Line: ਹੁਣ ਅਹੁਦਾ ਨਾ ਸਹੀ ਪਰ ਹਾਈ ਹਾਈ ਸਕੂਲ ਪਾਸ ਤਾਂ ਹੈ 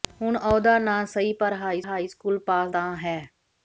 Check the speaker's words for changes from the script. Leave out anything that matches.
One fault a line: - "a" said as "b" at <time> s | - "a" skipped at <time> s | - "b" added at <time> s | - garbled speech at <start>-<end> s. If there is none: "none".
none